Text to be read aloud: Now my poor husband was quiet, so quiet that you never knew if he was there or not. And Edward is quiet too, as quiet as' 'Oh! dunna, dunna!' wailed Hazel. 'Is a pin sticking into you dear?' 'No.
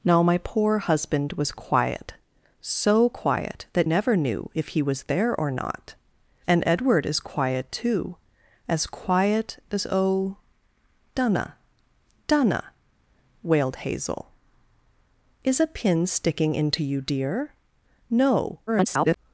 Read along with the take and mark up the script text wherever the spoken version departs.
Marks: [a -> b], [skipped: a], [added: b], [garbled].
Now my poor husband was quiet, so quiet that [skipped: you] never knew if he was there or not. And Edward is quiet too, as quiet as' 'Oh! dunna, dunna!' wailed Hazel. 'Is a pin sticking into you dear?' 'No. [garbled]